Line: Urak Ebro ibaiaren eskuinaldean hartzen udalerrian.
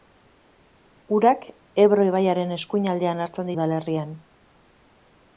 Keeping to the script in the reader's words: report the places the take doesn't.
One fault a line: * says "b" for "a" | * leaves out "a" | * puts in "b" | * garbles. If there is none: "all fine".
all fine